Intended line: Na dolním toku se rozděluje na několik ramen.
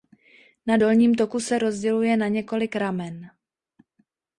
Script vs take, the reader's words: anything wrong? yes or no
no